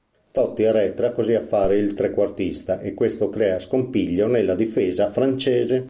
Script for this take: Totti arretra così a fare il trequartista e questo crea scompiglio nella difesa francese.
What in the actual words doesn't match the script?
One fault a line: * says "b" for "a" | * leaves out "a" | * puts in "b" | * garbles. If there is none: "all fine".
all fine